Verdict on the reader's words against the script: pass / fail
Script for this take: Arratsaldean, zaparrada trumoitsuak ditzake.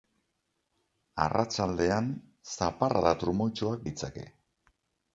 pass